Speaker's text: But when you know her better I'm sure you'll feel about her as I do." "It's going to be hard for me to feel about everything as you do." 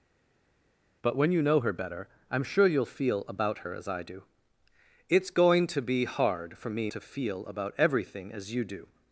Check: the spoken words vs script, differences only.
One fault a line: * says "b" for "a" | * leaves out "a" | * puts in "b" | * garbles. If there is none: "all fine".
all fine